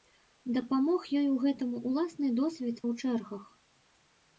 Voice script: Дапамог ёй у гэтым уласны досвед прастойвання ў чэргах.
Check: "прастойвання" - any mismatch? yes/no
yes